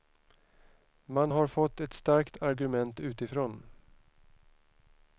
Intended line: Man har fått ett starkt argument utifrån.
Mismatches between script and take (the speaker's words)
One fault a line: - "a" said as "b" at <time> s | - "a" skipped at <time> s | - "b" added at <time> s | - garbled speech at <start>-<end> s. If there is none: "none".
none